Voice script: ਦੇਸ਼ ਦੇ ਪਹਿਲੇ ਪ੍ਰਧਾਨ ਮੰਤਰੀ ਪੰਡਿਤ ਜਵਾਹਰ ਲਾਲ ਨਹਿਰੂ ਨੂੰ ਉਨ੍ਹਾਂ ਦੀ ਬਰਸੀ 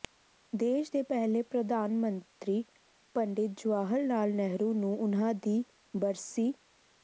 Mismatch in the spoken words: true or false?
false